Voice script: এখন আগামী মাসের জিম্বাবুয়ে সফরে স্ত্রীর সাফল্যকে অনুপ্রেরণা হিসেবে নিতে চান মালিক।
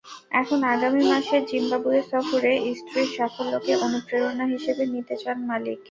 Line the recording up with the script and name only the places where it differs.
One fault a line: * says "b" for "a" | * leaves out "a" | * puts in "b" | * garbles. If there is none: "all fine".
all fine